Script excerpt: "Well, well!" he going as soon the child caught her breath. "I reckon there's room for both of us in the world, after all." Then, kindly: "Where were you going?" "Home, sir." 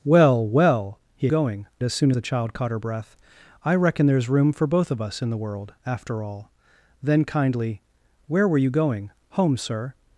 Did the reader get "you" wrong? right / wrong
right